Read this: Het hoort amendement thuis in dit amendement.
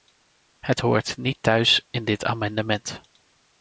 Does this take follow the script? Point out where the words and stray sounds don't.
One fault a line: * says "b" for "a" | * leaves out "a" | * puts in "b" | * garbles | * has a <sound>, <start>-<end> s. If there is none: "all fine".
* says "niet" for "amendement"